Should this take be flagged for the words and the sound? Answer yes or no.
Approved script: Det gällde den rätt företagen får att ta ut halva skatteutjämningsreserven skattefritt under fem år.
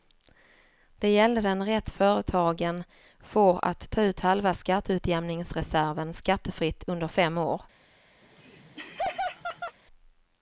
yes